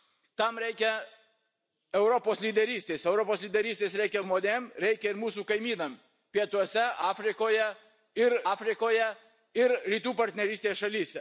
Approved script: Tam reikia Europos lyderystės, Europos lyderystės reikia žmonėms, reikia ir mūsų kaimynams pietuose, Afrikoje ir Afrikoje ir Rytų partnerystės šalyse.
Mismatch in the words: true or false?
false